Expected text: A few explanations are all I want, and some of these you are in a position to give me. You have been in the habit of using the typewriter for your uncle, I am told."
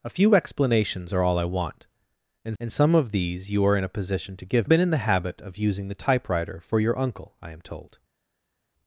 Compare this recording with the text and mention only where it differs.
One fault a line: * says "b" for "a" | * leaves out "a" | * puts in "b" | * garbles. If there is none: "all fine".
* puts in "and"
* leaves out "me You have"